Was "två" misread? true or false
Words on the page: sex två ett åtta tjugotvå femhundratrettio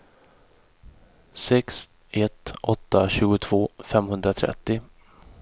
true